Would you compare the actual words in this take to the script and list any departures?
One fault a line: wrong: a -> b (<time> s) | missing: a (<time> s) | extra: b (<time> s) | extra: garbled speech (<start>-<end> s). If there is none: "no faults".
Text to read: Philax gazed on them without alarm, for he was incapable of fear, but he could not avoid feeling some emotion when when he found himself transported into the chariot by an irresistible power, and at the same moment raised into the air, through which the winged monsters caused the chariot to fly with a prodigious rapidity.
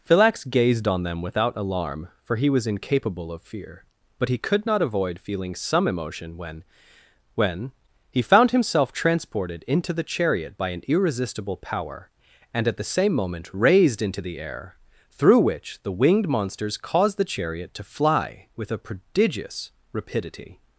no faults